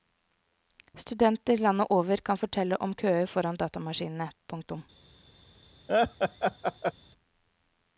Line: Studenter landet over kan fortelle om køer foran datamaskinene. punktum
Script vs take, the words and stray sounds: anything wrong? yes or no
yes